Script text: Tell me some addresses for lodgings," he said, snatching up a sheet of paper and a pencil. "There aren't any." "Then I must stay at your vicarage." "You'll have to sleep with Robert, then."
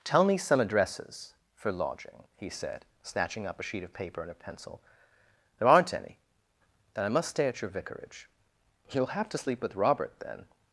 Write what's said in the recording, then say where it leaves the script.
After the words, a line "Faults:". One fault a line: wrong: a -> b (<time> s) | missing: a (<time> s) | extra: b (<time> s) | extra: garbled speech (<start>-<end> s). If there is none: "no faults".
Tell me some addresses for lodging," he said, snatching up a sheet of paper and a pencil. "There aren't any." "Then I must stay at your vicarage." "You'll have to sleep with Robert, then."
Faults:
wrong: lodgings -> lodging (1.7 s)